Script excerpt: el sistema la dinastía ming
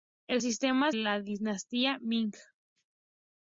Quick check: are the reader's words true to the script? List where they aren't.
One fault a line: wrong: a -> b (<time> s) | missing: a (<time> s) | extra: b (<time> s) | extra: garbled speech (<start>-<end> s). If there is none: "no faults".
no faults